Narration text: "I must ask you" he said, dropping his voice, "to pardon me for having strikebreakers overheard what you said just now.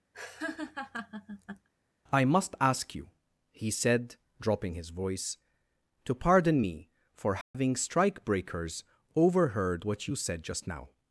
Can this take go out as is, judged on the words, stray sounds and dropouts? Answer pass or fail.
fail